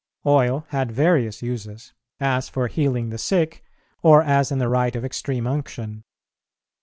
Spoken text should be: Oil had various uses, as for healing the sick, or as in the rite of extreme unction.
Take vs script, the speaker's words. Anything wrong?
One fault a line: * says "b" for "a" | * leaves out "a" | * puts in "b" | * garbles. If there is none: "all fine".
all fine